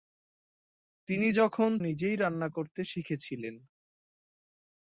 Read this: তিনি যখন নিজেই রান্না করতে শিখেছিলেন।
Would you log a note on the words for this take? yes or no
no